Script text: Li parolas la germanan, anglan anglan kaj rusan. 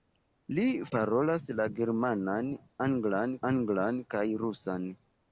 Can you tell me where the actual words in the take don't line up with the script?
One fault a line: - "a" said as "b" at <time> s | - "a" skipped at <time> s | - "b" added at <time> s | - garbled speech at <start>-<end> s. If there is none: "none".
none